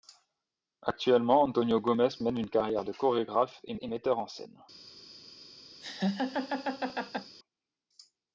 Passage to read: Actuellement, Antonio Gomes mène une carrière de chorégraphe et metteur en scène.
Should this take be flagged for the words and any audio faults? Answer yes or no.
yes